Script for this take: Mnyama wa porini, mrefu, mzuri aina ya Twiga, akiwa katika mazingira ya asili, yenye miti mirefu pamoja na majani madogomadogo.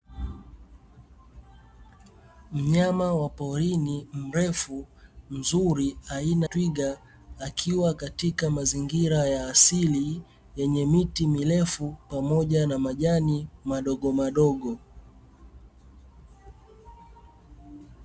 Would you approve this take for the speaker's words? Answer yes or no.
no